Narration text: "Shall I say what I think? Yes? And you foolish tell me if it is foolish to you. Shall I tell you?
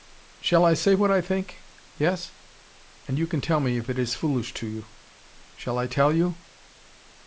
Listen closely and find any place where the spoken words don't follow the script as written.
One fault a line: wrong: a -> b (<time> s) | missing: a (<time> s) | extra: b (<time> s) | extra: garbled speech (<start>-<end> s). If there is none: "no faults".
wrong: foolish -> can (3.3 s)